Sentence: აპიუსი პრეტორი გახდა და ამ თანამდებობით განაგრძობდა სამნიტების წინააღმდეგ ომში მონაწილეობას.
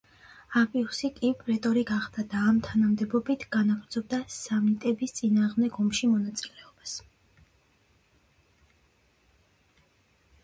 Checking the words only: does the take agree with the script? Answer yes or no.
no